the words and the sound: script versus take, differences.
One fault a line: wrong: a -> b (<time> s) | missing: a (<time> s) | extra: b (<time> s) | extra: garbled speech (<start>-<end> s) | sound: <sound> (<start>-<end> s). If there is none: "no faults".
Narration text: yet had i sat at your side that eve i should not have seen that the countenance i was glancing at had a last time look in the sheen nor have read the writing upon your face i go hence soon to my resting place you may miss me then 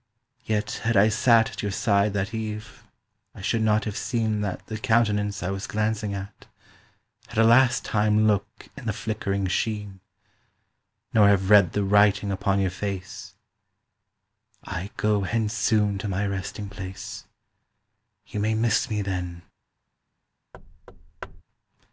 extra: flickering (8.9 s)
sound: thud (20.5-21.4 s)